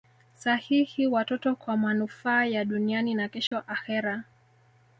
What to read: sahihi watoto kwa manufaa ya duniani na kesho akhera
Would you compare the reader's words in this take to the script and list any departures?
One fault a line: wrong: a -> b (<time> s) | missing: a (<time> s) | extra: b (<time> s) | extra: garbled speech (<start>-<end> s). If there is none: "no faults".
no faults